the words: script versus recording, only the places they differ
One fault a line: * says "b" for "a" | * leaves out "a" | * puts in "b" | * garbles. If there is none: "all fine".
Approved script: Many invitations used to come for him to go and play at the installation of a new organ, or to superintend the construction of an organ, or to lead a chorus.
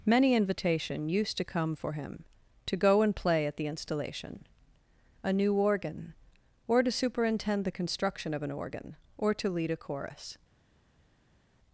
* says "invitation" for "invitations"
* leaves out "of"